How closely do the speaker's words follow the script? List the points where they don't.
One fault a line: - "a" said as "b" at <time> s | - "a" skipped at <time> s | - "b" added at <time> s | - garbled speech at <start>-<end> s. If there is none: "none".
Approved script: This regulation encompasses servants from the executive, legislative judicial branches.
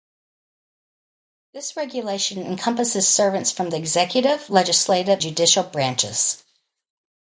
none